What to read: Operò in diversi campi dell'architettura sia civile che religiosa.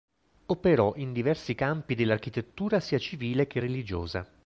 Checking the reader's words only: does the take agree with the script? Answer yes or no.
yes